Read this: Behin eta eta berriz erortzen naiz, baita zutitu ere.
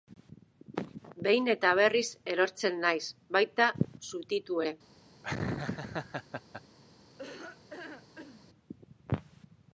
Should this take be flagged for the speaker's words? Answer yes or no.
yes